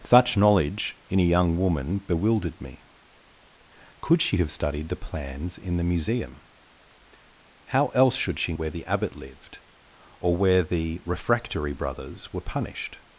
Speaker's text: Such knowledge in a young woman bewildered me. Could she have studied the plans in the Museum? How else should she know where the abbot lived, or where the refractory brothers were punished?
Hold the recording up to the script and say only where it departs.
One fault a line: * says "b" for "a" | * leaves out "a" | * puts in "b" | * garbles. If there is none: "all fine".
* leaves out "know"